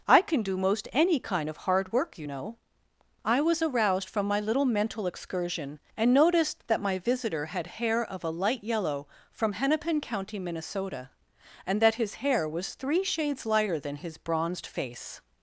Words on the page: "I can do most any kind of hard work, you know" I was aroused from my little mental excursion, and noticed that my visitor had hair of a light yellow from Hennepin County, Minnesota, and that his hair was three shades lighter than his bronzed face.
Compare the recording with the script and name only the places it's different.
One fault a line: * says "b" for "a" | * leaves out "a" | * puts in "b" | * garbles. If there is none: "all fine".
all fine